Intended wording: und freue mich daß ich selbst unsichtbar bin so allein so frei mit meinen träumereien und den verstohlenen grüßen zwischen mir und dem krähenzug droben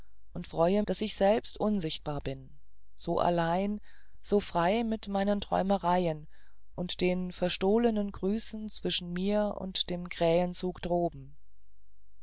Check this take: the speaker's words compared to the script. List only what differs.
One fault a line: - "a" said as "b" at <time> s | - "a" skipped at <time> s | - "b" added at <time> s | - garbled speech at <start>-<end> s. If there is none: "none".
- "mich" skipped at 0.8 s